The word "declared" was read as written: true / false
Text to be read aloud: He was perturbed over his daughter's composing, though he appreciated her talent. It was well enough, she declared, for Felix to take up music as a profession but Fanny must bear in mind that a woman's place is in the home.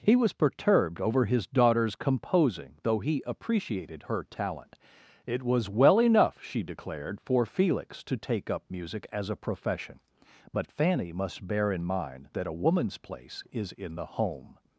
true